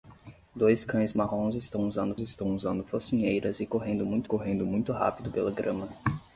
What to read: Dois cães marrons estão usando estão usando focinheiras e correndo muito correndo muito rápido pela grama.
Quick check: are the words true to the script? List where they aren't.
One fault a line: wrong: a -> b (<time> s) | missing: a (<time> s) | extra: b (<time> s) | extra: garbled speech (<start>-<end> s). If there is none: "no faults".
no faults